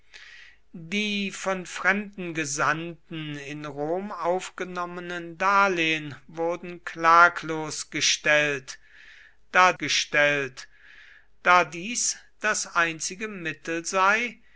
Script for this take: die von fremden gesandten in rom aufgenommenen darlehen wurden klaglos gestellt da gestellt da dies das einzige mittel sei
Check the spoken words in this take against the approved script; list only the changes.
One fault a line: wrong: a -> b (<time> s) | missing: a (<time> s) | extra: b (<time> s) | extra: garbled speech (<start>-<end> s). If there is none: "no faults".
no faults